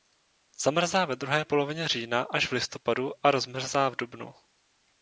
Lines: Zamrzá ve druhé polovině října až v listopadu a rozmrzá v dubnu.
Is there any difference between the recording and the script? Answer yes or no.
no